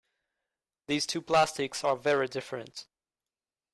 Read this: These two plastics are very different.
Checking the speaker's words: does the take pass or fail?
pass